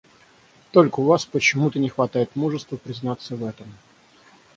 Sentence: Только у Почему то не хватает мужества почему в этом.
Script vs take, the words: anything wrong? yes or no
yes